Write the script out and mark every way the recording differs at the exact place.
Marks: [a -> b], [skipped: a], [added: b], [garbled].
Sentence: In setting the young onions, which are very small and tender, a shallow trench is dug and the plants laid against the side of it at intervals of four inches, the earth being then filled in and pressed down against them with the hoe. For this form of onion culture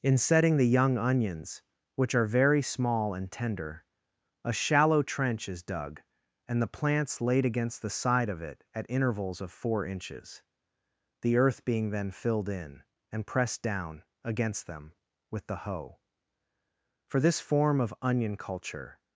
In setting the young onions, which are very small and tender, a shallow trench is dug and the plants laid against the side of it at intervals of four inches, the earth being then filled in and pressed down against them with the hoe. For this form of onion culture